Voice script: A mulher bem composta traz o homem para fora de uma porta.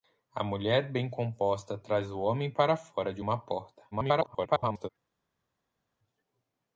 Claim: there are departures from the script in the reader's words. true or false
true